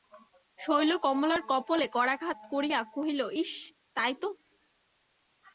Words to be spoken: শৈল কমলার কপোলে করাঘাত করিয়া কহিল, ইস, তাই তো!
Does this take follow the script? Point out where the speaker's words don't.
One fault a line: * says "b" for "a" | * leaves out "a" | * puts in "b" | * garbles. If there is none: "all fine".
all fine